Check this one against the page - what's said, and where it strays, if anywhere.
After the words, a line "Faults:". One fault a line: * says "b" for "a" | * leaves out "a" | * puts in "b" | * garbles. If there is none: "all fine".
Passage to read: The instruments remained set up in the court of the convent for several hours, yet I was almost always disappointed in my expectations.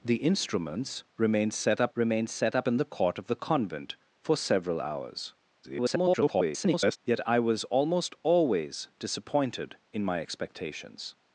The instruments remained set up remained set up in the court of the convent for several hours, [garbled] yet I was almost always disappointed in my expectations.
Faults:
* puts in "remained set up"
* garbles